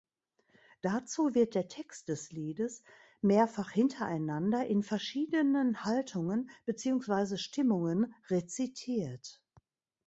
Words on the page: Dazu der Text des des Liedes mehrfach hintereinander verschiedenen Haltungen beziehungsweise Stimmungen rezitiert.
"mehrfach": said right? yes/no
yes